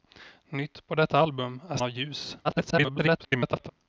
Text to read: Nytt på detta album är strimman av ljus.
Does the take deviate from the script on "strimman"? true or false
true